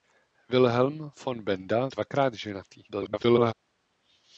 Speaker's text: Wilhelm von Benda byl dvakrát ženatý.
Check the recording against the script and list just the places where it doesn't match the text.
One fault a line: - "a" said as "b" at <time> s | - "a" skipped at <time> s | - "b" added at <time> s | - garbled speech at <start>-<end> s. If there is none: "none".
- "byl" skipped at 1.9 s
- garbled speech at 2.9-3.5 s